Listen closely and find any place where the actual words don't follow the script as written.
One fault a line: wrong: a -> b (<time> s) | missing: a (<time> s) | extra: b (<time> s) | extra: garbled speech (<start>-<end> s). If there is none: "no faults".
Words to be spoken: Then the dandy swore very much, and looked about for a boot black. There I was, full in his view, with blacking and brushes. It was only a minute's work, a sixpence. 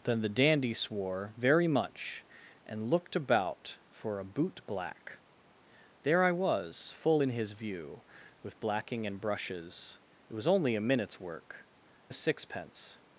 no faults